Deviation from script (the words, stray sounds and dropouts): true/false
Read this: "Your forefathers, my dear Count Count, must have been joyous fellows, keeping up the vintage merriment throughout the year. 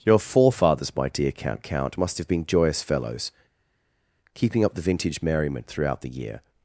false